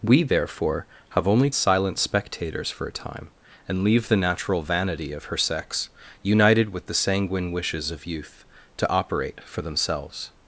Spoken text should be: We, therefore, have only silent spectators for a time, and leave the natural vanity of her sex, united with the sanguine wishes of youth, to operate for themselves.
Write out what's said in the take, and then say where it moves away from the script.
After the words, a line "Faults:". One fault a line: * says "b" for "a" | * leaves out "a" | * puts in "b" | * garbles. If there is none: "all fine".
We, therefore, have only silent spectators for a time, and leave the natural vanity of her sex, united with the sanguine wishes of youth, to operate for themselves.
Faults:
all fine